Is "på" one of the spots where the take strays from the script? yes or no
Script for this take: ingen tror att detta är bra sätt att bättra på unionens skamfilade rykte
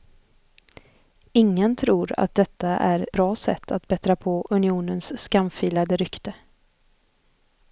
no